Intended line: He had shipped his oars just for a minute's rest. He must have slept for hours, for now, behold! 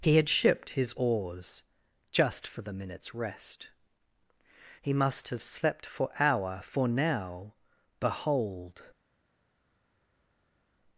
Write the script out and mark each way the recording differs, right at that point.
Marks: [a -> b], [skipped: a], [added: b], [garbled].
He had shipped his oars just for [a -> the] minute's rest. He must have slept for [hours, -> hour] for now, behold!